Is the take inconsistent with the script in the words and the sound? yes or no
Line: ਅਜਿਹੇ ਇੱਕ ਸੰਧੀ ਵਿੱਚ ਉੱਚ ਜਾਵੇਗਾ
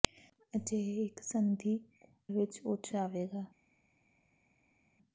no